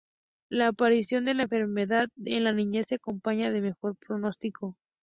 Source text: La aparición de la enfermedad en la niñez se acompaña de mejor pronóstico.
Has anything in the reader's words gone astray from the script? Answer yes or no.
no